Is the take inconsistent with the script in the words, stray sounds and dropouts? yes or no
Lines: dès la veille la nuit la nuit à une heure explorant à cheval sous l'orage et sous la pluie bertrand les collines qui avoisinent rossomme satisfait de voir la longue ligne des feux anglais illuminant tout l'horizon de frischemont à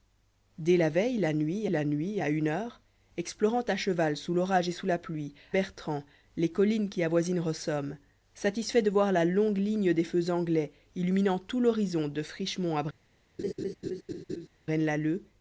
yes